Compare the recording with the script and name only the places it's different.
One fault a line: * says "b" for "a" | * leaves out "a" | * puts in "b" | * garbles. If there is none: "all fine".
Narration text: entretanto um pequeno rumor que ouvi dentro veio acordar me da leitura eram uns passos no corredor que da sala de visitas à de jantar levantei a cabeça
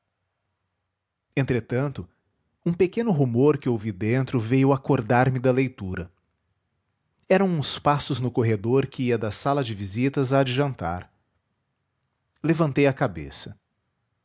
* puts in "ia"